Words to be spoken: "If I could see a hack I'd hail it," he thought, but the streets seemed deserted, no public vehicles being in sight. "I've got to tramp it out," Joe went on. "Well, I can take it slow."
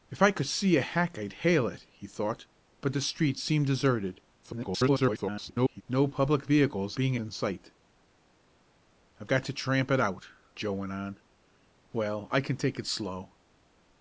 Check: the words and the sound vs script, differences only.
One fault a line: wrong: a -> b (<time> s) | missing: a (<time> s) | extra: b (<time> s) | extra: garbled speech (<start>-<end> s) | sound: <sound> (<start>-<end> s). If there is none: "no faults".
extra: garbled speech (4.4-5.8 s)